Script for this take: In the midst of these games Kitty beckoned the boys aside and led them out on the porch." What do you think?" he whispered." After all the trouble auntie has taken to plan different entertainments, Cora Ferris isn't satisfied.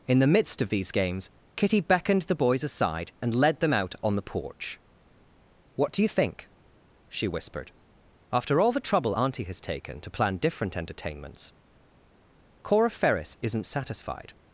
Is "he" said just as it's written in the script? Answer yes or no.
no